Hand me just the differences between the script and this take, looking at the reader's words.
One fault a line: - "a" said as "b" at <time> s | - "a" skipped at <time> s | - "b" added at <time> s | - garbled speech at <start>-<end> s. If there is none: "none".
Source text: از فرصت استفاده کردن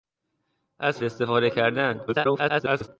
- "فرصت" skipped at 1.0 s
- garbled speech at 2.1-2.9 s